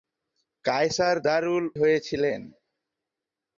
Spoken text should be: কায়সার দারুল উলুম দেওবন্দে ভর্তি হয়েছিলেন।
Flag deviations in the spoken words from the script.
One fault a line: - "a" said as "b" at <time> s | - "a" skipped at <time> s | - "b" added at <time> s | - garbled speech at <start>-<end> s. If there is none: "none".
- "উলুম দেওবন্দে ভর্তি" skipped at 1.6 s